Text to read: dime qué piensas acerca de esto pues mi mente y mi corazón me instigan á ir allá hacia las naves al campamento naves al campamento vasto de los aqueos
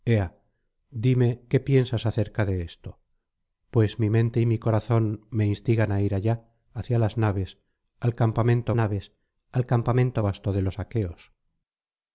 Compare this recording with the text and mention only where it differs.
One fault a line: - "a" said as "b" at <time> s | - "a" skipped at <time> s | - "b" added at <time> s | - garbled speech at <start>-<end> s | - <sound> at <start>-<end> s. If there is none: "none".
none